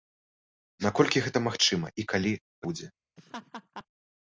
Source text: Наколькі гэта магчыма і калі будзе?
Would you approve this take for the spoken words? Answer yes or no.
yes